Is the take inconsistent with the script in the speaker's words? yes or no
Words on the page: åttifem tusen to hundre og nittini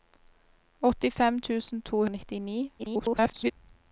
yes